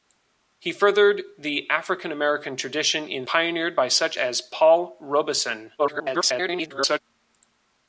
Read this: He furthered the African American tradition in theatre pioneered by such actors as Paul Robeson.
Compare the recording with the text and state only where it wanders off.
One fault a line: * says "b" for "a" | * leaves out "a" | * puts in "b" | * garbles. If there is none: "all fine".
* leaves out "theatre"
* leaves out "actors"
* garbles